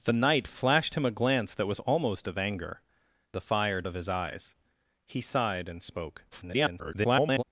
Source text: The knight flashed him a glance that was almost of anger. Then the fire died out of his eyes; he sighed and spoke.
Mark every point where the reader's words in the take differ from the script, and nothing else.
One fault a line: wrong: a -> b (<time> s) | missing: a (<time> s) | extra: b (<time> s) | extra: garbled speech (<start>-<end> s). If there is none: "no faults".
missing: Then (2.8 s)
missing: died out (3.8 s)
extra: garbled speech (6.3-7.4 s)